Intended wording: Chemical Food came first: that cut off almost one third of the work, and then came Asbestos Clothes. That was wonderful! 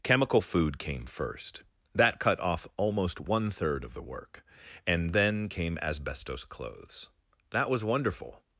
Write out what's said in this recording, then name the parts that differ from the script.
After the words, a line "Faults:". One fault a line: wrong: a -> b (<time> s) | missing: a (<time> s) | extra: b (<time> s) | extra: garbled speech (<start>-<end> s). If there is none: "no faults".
Chemical Food came first: that cut off almost one third of the work, and then came Asbestos Clothes. That was wonderful!
Faults:
no faults